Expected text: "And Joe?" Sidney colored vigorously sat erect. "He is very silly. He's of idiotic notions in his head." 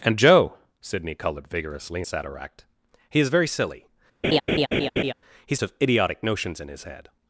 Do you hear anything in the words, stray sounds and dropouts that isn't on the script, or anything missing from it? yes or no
yes